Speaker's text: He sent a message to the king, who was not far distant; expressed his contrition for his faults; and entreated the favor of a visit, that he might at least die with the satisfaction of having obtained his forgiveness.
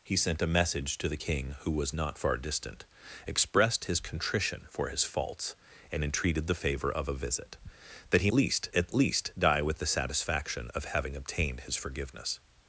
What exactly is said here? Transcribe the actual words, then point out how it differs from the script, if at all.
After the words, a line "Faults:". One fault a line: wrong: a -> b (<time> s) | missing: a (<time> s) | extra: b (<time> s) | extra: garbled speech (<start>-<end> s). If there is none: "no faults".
He sent a message to the king, who was not far distant; expressed his contrition for his faults; and entreated the favor of a visit, that he least at least die with the satisfaction of having obtained his forgiveness.
Faults:
wrong: might -> least (8.3 s)